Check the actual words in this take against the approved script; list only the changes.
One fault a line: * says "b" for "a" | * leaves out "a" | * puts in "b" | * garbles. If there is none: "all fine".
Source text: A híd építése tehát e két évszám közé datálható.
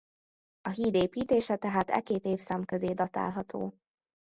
all fine